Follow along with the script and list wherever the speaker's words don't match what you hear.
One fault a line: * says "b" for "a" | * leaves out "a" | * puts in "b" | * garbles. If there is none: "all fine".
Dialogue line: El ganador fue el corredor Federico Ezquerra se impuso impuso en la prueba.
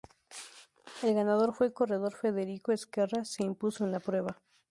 * leaves out "impuso"